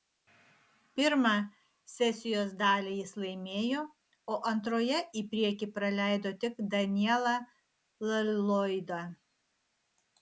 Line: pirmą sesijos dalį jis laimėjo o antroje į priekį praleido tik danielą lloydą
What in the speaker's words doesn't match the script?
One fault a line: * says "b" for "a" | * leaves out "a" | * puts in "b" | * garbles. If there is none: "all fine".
all fine